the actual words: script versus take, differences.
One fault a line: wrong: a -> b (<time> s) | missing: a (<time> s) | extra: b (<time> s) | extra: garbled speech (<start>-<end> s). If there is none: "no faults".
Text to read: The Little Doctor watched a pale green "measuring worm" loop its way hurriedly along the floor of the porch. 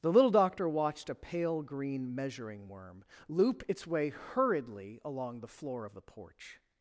no faults